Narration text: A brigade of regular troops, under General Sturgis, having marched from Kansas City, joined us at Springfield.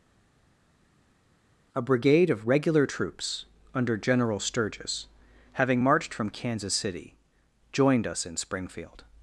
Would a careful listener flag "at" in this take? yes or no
yes